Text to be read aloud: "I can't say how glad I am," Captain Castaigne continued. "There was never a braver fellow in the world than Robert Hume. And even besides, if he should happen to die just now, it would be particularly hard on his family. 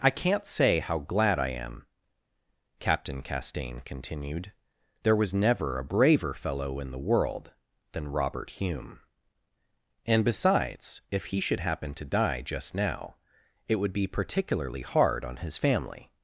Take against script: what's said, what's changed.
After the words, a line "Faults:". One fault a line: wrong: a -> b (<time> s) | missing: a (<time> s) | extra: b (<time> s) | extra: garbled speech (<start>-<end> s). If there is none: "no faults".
"I can't say how glad I am," Captain Castaigne continued. "There was never a braver fellow in the world than Robert Hume. And besides, if he should happen to die just now, it would be particularly hard on his family.
Faults:
missing: even (10.2 s)